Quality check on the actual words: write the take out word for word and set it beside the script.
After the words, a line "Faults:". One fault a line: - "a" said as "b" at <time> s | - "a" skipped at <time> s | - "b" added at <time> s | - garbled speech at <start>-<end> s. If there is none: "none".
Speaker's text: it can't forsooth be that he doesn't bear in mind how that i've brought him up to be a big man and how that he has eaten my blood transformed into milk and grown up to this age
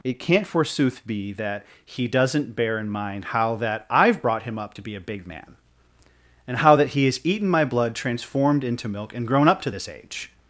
it can't forsooth be that he doesn't bear in mind how that i've brought him up to be a big man and how that he has eaten my blood transformed into milk and grown up to this age
Faults:
none